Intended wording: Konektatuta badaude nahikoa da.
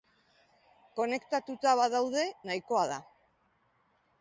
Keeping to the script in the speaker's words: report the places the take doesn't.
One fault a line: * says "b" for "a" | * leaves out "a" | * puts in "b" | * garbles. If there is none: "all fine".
all fine